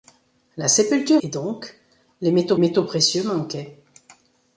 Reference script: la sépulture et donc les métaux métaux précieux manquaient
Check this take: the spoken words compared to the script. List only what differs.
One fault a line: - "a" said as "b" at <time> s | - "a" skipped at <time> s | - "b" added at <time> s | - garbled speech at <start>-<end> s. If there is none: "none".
none